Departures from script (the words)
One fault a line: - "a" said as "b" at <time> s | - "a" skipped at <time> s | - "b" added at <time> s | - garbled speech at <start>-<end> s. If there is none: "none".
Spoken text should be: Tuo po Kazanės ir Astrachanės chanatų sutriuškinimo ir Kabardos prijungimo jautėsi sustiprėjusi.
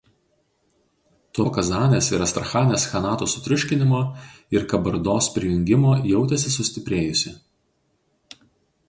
none